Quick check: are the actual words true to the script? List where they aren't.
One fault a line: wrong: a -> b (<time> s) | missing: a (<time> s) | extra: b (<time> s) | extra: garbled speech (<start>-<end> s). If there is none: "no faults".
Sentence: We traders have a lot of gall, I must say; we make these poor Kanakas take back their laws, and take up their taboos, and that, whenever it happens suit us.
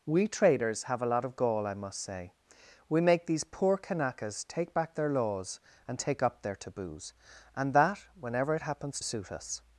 no faults